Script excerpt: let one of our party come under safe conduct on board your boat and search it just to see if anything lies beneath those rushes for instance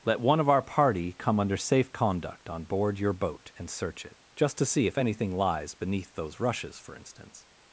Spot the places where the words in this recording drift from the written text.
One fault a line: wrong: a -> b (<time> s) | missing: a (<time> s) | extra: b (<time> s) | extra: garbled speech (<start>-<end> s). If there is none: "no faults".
no faults